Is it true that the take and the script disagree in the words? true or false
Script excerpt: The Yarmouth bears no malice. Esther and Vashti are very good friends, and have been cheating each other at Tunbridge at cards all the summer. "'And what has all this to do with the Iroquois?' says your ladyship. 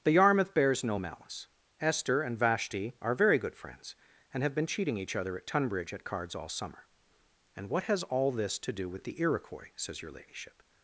true